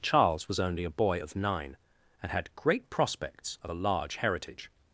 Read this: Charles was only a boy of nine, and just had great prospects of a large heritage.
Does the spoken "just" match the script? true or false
false